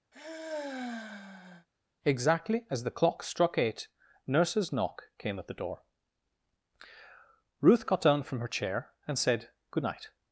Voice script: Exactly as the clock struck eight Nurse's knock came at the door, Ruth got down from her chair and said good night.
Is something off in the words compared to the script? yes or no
no